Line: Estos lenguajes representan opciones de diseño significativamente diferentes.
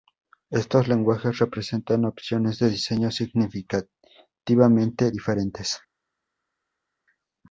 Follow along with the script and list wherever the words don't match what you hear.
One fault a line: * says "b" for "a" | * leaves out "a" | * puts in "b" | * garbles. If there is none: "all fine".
all fine